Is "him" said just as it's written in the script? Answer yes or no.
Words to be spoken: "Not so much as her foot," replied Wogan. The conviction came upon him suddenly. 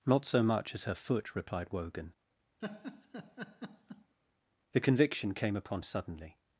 no